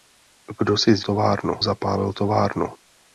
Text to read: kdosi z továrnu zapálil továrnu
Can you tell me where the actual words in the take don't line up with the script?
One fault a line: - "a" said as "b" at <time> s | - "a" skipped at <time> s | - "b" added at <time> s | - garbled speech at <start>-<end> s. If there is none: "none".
none